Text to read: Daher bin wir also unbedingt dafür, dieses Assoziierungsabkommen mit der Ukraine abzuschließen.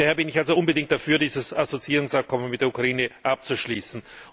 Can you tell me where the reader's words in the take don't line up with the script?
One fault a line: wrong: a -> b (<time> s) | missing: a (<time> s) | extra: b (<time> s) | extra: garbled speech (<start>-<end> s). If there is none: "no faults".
wrong: wir -> ich (0.3 s)